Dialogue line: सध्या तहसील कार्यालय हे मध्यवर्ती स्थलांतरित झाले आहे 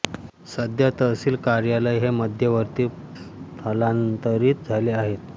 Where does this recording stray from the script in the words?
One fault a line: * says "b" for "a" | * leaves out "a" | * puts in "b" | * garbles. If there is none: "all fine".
all fine